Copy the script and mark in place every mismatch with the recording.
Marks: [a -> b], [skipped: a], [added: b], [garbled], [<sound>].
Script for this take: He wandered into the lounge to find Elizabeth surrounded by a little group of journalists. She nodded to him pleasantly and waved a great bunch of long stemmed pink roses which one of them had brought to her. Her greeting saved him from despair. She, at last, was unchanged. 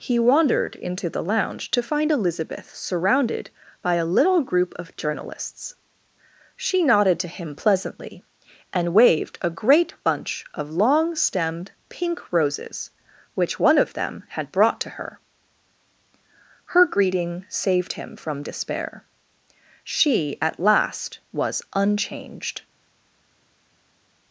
He wandered into the lounge to find Elizabeth surrounded by a little group of journalists. She nodded to him pleasantly and waved a great bunch of long stemmed pink roses which one of them had brought to her. Her greeting saved him from despair. She, at last, was unchanged.